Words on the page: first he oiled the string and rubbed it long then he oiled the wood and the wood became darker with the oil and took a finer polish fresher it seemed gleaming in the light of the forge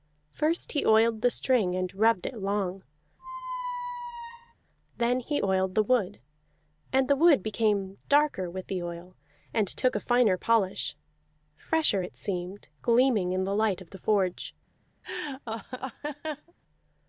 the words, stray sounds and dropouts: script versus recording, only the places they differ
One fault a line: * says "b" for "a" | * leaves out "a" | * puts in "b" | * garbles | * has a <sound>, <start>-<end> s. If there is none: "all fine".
* has a squeak, 3.2-4.5 s
* has a laugh, 15.0-16.5 s